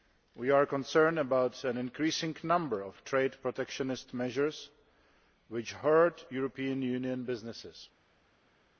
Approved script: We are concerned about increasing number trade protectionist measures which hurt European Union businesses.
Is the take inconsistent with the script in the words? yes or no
yes